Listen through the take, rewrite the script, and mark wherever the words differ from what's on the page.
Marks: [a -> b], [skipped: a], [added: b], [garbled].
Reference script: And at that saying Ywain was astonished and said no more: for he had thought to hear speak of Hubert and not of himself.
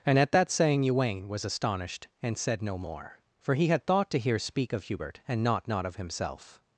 And at that saying Ywain was astonished and said no more: for he had thought to hear speak of Hubert and not [added: not] of himself.